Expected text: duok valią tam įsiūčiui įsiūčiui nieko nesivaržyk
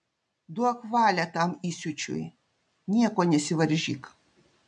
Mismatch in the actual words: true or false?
true